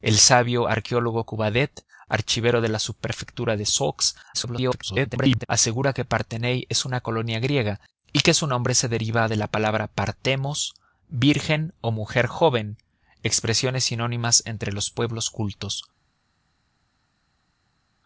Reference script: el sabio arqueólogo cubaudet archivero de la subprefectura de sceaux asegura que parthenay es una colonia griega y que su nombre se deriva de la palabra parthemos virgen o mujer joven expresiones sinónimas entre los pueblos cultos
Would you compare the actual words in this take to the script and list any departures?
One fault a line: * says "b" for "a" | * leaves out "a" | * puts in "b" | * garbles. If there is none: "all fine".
* garbles